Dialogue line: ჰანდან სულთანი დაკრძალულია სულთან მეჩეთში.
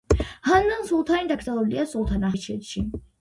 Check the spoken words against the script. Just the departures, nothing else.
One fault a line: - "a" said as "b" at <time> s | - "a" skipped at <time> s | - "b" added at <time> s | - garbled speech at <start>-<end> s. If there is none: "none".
none